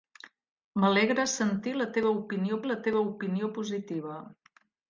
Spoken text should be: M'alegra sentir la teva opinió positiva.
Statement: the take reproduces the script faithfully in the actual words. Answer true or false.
false